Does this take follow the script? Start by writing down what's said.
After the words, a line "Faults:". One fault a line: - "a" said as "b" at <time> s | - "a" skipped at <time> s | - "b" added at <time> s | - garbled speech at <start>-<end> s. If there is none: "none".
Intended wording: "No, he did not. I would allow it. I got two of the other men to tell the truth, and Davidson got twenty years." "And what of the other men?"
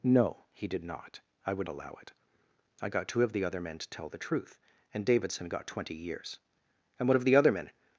"No, he did not. I would allow it. I got two of the other men to tell the truth, and Davidson got twenty years." "And what of the other men?"
Faults:
none